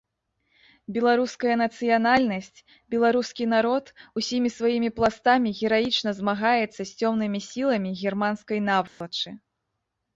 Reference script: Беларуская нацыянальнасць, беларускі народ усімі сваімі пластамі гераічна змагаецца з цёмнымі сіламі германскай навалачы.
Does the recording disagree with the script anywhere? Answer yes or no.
no